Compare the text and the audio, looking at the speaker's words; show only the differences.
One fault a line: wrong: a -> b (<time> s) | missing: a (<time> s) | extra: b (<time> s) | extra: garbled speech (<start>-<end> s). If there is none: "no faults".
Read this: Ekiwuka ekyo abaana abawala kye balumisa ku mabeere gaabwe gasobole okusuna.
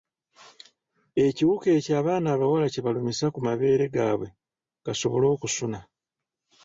no faults